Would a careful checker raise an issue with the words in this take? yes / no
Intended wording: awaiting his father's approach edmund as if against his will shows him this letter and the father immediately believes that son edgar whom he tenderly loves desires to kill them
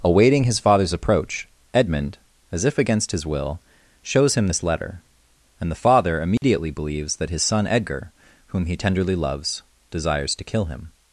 yes